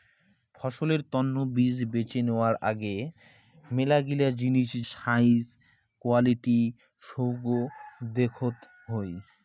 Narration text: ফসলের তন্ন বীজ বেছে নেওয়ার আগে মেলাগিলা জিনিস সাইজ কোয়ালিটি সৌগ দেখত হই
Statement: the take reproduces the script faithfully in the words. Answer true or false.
true